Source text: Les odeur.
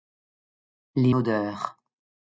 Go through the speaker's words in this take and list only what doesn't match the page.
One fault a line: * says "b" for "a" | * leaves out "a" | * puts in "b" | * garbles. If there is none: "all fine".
all fine